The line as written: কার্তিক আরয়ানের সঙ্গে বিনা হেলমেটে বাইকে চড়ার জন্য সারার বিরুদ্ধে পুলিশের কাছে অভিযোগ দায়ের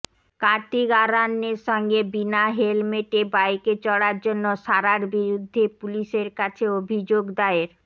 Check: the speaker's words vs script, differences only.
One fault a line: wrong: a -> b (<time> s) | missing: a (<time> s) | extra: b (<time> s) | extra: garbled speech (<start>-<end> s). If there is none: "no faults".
no faults